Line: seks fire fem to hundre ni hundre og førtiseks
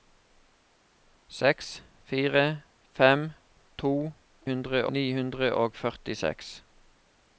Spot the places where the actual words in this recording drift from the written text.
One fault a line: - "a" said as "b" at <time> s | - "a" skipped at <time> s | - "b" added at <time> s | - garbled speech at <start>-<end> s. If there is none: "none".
none